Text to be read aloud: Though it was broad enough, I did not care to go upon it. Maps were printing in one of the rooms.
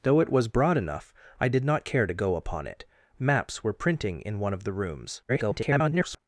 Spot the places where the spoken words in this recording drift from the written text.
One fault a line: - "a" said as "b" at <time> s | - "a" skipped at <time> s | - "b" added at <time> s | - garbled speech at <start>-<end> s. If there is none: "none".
- garbled speech at 5.3-6.2 s